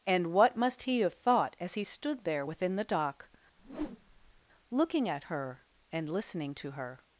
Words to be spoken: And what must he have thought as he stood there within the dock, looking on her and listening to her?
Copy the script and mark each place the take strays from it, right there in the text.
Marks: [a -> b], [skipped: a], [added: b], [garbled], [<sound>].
And what must he have thought as he stood there within the dock, [whoosh] looking [on -> at] her and listening to her?